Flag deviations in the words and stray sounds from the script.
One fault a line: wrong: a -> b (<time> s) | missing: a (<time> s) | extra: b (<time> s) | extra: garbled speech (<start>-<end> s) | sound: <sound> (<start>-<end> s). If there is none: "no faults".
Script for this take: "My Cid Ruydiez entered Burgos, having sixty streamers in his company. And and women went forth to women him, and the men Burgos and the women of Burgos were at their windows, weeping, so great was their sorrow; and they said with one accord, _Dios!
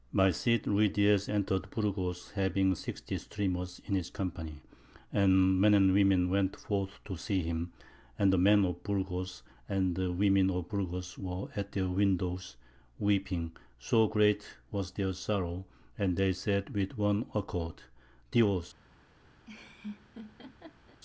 extra: men (5.6 s)
wrong: women -> see (7.2 s)
extra: of (8.7 s)
sound: laugh (19.5-21.0 s)